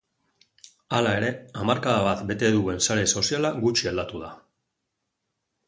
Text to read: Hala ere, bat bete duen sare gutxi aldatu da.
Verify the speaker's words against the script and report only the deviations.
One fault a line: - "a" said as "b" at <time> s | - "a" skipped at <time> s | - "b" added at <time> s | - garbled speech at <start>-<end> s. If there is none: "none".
- "hamarkada" added at 1.6 s
- "soziala" added at 3.2 s